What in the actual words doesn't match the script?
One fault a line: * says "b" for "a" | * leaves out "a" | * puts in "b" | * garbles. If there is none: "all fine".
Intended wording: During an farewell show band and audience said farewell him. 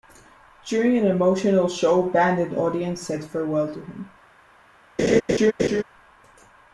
* says "emotional" for "farewell"
* puts in "to"